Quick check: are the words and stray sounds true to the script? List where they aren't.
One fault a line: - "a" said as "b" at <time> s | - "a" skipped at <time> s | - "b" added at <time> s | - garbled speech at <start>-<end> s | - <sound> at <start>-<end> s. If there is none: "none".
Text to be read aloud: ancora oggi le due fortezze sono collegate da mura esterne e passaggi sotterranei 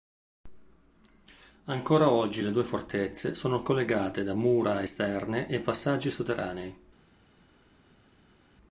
none